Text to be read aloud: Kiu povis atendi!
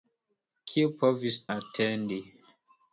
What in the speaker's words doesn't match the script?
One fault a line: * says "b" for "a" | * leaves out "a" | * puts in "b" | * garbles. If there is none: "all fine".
all fine